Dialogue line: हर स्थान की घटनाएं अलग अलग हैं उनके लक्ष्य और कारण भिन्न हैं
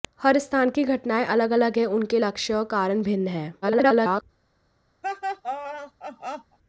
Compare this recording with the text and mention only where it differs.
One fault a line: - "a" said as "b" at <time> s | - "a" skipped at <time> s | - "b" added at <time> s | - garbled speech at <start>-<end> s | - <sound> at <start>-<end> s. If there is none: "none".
- garbled speech at 3.6-4.2 s
- laugh at 5.0-6.6 s